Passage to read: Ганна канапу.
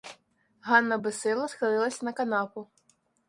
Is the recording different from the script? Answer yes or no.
yes